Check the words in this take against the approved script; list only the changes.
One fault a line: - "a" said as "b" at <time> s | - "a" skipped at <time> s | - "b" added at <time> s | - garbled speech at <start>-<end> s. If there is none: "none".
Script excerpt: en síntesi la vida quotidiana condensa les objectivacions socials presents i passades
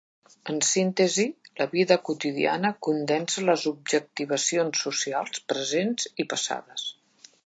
none